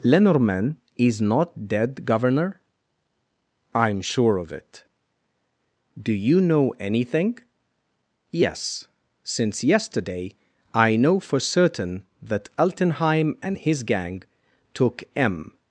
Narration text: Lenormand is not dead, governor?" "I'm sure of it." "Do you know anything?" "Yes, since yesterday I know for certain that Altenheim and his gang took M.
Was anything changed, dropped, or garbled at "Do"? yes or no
no